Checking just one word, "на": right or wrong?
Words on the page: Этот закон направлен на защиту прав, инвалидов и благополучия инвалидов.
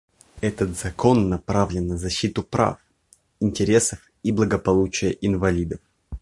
right